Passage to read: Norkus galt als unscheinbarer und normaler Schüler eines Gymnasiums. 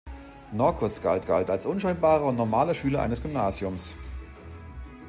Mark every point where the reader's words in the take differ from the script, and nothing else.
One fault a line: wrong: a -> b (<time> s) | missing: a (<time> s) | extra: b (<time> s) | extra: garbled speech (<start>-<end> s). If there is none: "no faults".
extra: galt (1.2 s)